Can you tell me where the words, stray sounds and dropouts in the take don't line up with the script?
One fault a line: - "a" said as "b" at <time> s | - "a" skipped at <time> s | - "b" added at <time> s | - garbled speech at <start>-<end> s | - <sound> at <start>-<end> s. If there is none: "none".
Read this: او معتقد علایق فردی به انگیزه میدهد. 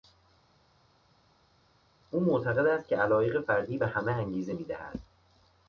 - "است که" added at 2.7 s
- "همه" added at 3.9 s